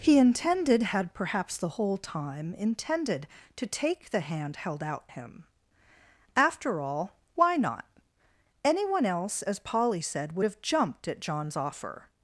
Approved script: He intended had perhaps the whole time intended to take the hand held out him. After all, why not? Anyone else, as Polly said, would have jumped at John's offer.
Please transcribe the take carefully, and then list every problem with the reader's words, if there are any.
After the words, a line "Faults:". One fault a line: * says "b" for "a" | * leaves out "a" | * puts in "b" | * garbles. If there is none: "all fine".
He intended had perhaps the whole time intended to take the hand held out him. After all, why not? Anyone else, as Polly said, would have jumped at John's offer.
Faults:
all fine